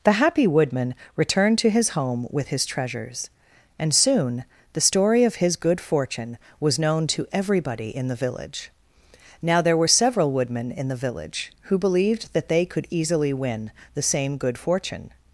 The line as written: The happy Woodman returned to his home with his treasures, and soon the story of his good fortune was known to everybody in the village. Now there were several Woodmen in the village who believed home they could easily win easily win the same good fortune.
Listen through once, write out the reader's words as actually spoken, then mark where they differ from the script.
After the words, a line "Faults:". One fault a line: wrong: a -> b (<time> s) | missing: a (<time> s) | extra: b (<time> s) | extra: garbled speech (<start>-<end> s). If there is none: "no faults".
The happy Woodman returned to his home with his treasures, and soon the story of his good fortune was known to everybody in the village. Now there were several Woodmen in the village who believed that they could easily win the same good fortune.
Faults:
wrong: home -> that (12.3 s)
missing: easily win (13.7 s)